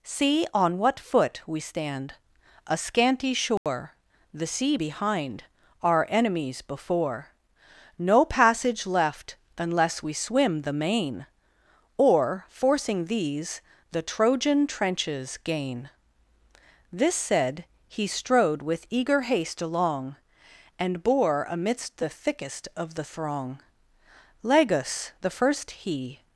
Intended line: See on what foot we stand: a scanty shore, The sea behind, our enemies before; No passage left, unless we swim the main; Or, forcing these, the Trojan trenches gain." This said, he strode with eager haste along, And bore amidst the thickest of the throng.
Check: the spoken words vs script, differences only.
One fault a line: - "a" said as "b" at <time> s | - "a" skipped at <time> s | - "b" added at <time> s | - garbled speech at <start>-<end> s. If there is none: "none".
- "Lagus the first he" added at 24.4 s